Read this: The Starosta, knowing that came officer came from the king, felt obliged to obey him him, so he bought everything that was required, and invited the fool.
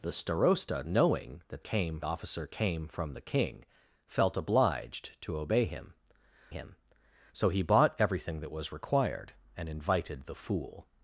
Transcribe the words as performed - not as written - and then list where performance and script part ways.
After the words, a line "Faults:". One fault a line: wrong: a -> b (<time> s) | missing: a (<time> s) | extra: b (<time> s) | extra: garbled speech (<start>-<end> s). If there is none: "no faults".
The Starosta, knowing that came officer came from the king, felt obliged to obey him him, so he bought everything that was required, and invited the fool.
Faults:
no faults